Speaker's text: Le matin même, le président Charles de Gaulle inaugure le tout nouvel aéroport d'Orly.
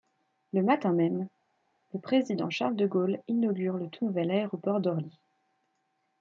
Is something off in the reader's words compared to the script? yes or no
no